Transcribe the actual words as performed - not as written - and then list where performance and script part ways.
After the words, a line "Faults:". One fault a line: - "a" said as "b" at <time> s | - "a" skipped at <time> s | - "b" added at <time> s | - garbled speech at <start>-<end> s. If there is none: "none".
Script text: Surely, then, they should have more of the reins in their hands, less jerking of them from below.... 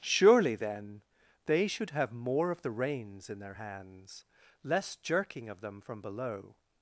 Surely, then, they should have more of the reins in their hands, less jerking of them from below....
Faults:
none